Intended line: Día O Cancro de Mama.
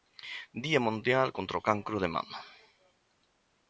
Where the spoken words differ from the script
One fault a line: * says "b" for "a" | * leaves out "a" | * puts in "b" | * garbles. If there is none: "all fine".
* puts in "Mundial Contra"